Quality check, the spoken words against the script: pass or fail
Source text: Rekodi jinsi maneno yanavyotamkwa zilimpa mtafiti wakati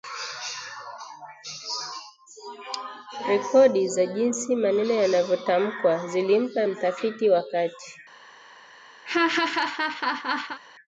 fail